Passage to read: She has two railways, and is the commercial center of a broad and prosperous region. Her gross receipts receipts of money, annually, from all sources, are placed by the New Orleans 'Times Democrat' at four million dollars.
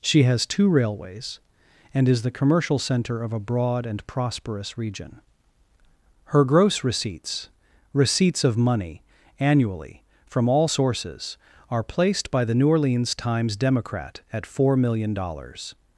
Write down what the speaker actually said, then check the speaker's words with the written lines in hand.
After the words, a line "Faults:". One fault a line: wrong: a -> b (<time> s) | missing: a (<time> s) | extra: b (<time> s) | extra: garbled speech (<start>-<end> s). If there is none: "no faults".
She has two railways, and is the commercial center of a broad and prosperous region. Her gross receipts receipts of money, annually, from all sources, are placed by the New Orleans 'Times Democrat' at four million dollars.
Faults:
no faults